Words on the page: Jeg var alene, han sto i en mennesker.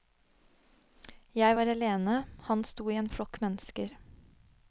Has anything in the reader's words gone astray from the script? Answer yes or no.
yes